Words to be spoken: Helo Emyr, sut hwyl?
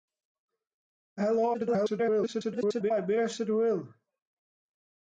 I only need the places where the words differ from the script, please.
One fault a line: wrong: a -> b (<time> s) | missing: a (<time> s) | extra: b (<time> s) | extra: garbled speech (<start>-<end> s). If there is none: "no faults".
extra: garbled speech (1.5-2.9 s)